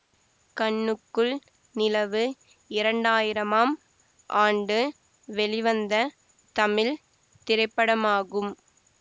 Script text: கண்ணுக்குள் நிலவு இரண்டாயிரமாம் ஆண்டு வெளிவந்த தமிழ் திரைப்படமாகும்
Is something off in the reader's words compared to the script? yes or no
no